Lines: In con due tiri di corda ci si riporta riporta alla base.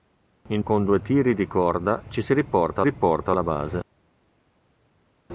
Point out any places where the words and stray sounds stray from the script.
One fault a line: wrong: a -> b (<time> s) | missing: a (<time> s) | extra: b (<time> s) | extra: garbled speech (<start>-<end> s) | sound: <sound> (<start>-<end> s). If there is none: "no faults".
no faults